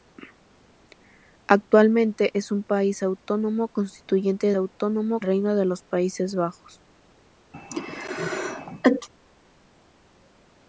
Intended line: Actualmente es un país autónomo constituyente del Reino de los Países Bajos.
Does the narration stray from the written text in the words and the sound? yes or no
yes